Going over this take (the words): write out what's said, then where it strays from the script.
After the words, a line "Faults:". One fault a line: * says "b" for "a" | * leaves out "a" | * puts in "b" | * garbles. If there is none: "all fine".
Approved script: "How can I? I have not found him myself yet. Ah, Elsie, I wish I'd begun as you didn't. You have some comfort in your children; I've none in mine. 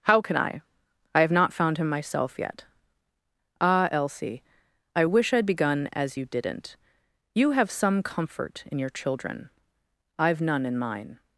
"How can I? I have not found him myself yet. Ah, Elsie, I wish I'd begun as you didn't. You have some comfort in your children; I've none in mine.
Faults:
all fine